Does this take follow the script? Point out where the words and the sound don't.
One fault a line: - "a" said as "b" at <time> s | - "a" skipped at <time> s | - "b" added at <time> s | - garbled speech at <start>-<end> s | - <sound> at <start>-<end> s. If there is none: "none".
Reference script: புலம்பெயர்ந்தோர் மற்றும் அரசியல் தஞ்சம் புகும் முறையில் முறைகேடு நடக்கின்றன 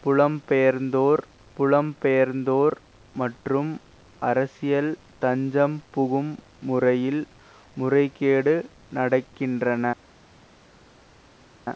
- "புலம்பெயர்ந்தோர்" added at 1.6 s